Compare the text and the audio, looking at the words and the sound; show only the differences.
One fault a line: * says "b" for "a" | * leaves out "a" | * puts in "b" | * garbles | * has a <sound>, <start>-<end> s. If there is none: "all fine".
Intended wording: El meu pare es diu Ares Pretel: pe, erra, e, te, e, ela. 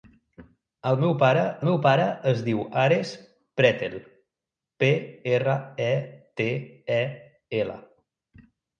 * puts in "meu pare"